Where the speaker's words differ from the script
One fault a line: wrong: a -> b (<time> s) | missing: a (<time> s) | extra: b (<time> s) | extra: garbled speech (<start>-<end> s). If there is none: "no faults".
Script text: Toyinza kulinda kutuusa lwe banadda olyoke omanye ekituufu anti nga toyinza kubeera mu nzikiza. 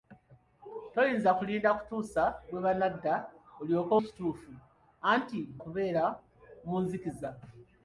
missing: omanye (3.9 s)
missing: nga toyinza (5.4 s)